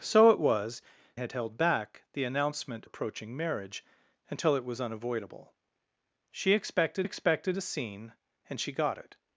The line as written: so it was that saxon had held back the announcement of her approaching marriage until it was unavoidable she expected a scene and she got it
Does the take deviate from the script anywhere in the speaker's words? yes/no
yes